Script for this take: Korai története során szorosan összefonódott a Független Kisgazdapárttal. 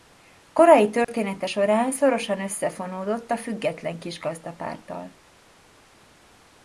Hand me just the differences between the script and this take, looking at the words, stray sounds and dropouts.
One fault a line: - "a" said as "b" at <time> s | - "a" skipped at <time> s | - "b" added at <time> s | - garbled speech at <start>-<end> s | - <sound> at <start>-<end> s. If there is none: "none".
- dropout at 1.0-1.1 s